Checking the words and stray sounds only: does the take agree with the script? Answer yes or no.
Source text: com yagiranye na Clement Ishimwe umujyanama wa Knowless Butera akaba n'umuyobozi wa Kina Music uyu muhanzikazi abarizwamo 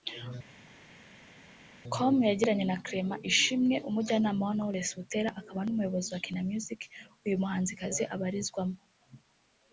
yes